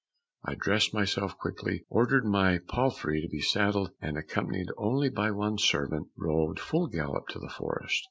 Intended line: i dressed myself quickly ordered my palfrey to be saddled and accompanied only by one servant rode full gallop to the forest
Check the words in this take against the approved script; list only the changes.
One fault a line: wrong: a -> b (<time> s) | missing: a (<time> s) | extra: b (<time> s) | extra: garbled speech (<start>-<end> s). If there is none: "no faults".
no faults